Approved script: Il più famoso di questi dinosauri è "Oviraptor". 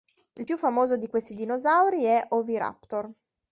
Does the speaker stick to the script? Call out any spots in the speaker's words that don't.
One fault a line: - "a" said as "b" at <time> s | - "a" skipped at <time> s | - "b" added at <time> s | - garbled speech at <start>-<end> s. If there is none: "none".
none